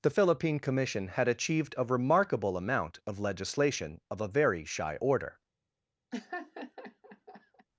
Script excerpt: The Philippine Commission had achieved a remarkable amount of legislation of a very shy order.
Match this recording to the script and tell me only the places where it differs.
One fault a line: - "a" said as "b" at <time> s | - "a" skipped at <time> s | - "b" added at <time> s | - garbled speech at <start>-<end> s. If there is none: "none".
none